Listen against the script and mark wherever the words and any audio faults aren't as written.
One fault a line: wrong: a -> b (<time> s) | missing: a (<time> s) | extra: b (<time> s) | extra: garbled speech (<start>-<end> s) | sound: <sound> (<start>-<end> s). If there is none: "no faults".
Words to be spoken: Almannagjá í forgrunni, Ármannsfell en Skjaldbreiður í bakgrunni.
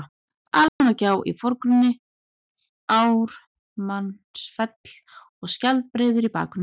sound: dropout (0.7-0.8 s)
wrong: en -> og (5.4 s)